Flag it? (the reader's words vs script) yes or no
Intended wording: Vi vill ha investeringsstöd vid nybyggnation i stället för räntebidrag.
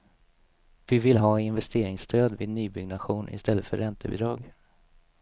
no